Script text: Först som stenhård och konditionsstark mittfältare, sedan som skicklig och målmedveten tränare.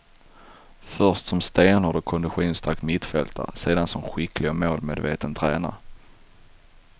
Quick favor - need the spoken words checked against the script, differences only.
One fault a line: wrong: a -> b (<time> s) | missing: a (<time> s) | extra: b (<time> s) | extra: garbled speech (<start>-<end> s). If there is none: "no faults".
no faults